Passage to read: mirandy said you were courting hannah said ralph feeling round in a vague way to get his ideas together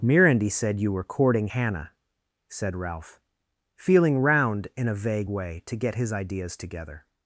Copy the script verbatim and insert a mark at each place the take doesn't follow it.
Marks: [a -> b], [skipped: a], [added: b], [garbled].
mirandy said you were courting hannah said ralph feeling round in a vague way to get his ideas together